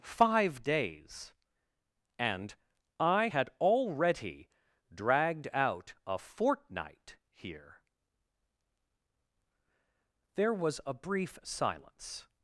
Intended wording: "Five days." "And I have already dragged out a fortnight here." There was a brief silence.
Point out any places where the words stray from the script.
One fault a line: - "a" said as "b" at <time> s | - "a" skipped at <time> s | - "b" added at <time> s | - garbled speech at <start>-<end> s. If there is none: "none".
- "have" said as "had" at 3.2 s